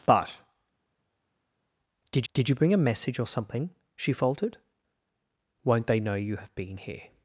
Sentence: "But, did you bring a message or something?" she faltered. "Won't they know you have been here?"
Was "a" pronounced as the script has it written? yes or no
yes